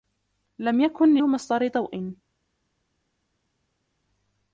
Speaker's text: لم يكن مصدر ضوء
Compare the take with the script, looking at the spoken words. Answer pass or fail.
pass